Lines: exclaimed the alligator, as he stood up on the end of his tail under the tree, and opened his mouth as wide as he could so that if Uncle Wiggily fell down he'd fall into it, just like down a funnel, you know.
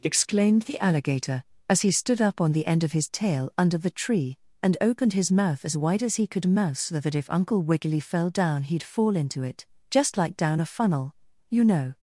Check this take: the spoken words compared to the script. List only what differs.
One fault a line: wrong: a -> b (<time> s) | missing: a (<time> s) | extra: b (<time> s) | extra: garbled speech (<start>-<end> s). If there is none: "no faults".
extra: mouse (6.5 s)